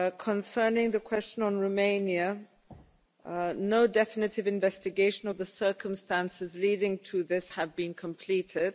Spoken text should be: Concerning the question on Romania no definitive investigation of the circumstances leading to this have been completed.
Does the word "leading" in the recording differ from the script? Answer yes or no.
no